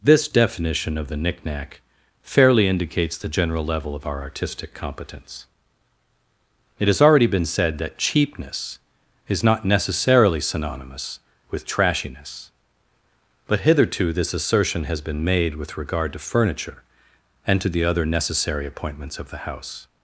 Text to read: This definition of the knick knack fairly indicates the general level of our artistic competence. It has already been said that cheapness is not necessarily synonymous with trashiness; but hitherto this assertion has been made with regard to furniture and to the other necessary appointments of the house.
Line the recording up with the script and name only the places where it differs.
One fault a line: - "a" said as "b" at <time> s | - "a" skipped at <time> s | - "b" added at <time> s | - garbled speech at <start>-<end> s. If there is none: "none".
none